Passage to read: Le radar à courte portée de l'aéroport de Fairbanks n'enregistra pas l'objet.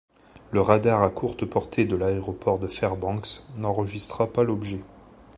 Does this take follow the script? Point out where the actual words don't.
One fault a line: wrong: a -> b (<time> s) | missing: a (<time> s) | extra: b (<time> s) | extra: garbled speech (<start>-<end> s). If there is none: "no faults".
no faults